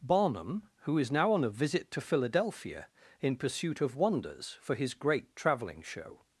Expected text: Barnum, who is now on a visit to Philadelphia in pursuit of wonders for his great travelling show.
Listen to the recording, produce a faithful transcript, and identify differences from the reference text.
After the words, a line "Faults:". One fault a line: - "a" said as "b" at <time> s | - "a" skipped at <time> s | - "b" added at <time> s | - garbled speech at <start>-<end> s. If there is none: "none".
Barnum, who is now on a visit to Philadelphia in pursuit of wonders for his great travelling show.
Faults:
none